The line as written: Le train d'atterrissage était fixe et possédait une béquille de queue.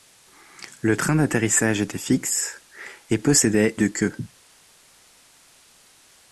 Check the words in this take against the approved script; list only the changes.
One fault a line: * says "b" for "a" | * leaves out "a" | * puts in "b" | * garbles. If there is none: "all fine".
* leaves out "une béquille"